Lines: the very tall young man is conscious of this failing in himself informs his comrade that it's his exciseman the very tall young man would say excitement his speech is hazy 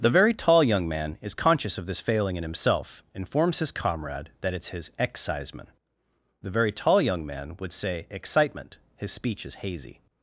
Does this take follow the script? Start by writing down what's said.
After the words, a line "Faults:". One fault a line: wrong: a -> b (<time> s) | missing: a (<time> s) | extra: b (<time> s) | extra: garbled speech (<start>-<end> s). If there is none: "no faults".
the very tall young man is conscious of this failing in himself informs his comrade that it's his exciseman the very tall young man would say excitement his speech is hazy
Faults:
no faults